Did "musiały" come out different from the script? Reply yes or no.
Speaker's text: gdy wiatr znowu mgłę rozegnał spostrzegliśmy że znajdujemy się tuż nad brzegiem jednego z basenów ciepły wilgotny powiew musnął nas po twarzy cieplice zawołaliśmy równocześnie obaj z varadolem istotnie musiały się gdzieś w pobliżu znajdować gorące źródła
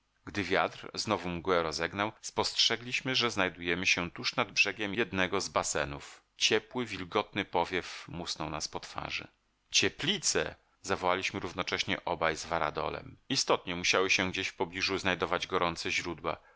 no